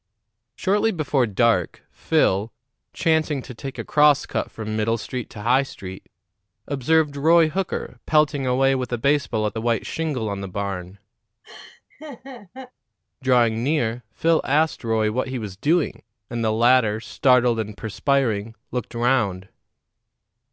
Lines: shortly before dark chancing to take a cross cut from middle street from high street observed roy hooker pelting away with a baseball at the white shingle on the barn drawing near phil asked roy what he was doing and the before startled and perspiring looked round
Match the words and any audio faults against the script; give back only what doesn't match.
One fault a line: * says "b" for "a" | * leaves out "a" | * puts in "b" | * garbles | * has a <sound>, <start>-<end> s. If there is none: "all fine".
* puts in "phil"
* says "to" for "from"
* has a laugh, 11.4-12.7 s
* says "latter" for "before"